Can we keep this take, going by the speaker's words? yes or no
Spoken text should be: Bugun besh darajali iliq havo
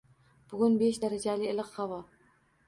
yes